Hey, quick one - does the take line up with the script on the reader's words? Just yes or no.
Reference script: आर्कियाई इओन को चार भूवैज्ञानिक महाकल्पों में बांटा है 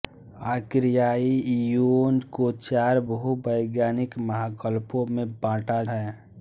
yes